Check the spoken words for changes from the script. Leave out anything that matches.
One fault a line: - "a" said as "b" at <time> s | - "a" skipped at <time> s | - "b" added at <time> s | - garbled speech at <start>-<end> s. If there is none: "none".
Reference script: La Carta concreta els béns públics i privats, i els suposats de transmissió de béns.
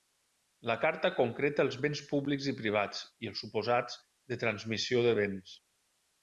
none